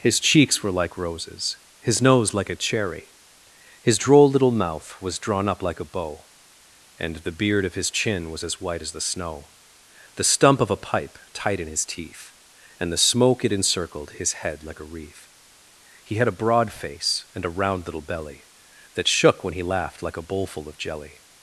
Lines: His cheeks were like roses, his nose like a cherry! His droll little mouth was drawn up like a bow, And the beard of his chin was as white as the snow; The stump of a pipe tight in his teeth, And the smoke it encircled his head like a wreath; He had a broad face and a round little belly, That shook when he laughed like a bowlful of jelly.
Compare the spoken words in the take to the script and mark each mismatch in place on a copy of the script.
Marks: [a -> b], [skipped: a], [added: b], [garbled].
His cheeks were like roses, his nose like a cherry! His droll little mouth was drawn up like a bow, And the beard of his chin was as white as the snow; The stump of a pipe tight in his teeth, And the smoke it encircled his head like a wreath; He had a broad face and a round little belly, That shook when he laughed like a bowlful of jelly.